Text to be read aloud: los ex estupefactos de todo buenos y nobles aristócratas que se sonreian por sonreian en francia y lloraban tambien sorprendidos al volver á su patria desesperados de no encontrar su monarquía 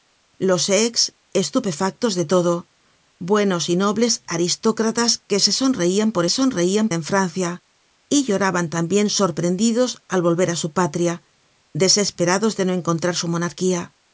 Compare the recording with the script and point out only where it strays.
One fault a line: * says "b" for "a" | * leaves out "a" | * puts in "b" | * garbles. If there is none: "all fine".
all fine